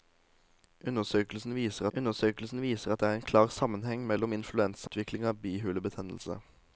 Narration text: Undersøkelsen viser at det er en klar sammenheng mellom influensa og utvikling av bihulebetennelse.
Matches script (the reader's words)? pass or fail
fail